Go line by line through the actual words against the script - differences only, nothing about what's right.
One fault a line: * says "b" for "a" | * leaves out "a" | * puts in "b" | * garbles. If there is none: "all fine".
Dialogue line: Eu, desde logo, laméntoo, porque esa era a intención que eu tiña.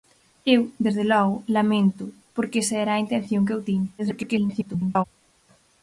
* garbles